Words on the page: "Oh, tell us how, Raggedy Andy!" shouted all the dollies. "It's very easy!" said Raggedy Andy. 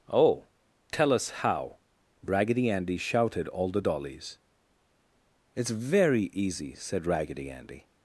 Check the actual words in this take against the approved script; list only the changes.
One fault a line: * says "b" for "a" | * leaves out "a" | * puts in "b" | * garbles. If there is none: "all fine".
all fine